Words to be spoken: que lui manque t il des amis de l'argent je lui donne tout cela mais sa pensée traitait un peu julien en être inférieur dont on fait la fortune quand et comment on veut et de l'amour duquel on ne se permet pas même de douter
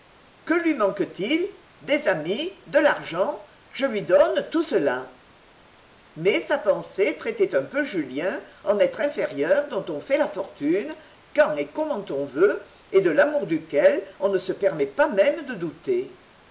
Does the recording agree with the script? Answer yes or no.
yes